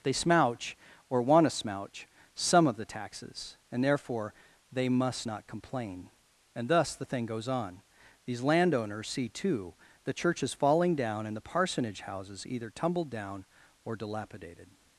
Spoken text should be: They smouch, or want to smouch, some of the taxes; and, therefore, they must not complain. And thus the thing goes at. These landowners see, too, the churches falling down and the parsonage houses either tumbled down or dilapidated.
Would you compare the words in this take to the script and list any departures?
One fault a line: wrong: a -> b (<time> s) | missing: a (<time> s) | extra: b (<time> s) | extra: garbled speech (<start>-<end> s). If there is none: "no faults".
wrong: at -> on (7.5 s)